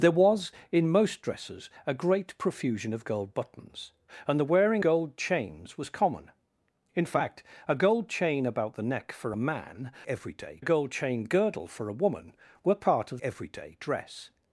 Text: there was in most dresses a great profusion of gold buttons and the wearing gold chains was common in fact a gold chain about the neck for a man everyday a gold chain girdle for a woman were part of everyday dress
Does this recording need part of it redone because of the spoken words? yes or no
no